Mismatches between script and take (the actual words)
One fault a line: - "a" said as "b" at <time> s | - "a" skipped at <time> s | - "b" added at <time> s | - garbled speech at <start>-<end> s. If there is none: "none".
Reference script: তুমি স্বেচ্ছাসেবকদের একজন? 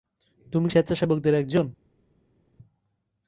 none